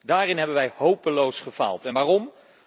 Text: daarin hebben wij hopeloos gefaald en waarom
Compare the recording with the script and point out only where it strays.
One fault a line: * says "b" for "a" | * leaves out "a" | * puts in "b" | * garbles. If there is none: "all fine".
all fine